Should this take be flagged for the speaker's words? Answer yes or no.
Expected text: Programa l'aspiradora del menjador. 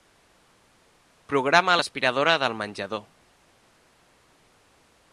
no